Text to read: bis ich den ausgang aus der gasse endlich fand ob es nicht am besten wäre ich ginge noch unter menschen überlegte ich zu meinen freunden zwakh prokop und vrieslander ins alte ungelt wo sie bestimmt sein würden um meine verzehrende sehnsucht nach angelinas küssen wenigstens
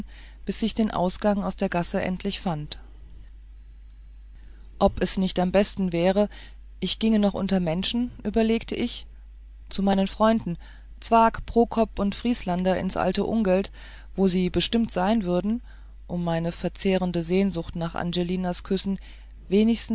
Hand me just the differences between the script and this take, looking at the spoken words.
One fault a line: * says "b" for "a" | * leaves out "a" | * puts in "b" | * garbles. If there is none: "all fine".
all fine